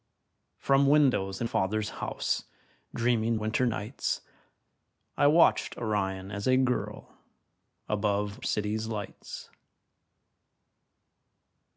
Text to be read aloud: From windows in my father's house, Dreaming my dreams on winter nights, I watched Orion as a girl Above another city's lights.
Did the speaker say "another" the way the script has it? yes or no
no